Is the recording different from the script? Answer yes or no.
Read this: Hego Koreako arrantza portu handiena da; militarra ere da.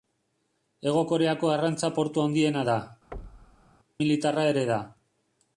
no